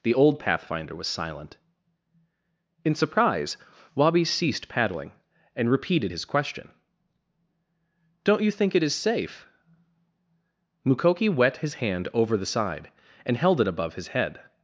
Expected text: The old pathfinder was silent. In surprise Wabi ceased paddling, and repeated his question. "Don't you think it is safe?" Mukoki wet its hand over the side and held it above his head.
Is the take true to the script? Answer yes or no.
no